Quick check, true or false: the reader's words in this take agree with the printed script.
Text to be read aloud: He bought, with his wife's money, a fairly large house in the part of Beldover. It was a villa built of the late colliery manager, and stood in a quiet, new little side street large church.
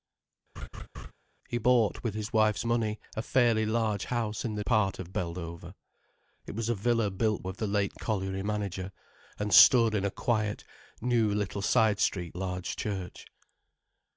true